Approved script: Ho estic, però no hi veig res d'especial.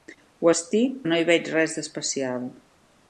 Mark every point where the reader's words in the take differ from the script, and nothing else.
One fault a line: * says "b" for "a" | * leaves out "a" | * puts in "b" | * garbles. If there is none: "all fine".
* leaves out "però"